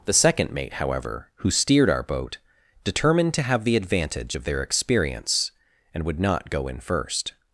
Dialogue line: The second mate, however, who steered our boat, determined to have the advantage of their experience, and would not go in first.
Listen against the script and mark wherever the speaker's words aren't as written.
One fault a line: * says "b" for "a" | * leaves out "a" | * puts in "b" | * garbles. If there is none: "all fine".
all fine